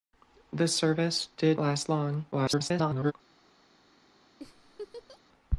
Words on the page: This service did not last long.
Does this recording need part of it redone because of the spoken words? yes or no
yes